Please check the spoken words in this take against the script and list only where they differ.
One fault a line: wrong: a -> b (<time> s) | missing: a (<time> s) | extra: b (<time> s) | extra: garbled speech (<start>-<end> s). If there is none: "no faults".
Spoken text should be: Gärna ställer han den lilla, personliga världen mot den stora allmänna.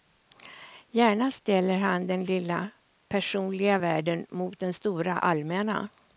no faults